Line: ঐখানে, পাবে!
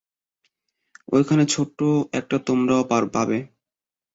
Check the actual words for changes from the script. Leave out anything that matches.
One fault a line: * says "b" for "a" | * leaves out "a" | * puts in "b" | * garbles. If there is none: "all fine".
* puts in "ছোট্ট একটা তোমরাও"